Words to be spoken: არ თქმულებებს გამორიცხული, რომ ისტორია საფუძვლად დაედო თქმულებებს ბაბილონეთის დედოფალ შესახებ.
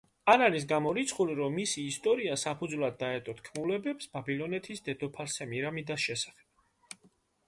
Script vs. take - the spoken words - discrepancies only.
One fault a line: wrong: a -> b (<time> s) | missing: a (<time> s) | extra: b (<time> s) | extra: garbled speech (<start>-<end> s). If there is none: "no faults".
wrong: თქმულებებს -> არის (0.4 s)
extra: მისი (1.6 s)
extra: სემირამიდას (5.3 s)